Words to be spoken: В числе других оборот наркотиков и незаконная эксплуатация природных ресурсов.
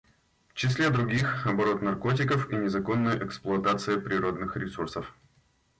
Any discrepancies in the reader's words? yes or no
no